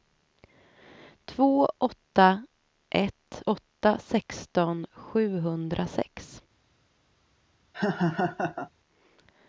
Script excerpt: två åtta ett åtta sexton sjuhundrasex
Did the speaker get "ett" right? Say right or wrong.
right